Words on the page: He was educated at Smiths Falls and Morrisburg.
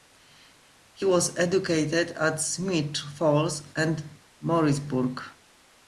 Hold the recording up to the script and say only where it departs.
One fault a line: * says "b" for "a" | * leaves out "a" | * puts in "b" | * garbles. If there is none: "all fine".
all fine